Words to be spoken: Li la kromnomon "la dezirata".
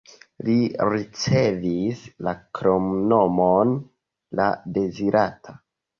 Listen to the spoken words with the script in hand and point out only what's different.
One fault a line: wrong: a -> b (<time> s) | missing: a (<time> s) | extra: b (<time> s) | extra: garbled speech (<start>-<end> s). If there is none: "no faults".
extra: ricevis (0.9 s)